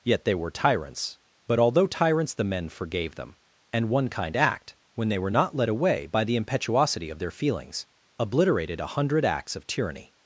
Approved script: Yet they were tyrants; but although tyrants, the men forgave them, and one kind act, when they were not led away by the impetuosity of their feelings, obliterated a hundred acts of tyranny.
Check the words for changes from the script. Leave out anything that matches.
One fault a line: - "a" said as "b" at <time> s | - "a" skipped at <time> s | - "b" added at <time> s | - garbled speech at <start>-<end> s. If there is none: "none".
none